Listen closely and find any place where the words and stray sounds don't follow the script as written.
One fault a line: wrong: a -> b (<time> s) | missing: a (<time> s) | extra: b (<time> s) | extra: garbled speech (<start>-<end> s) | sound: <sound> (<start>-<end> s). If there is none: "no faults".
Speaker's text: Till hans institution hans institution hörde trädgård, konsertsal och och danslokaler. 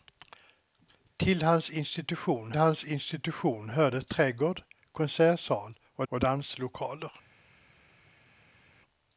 no faults